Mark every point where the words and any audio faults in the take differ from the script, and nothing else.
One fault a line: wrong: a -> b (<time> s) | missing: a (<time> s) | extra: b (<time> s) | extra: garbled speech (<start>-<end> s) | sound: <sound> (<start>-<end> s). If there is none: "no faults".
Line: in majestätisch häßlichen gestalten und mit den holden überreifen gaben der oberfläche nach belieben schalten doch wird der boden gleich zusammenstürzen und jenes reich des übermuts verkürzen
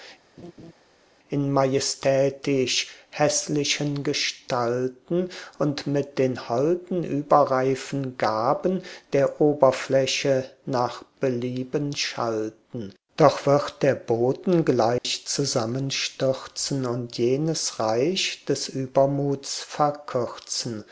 sound: laugh (0.4-0.7 s)
sound: dropout (15.0-15.0 s)